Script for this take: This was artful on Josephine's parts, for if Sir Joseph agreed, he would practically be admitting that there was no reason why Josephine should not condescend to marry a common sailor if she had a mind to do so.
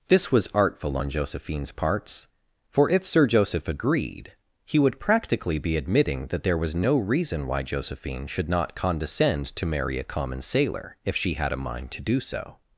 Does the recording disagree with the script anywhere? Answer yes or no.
no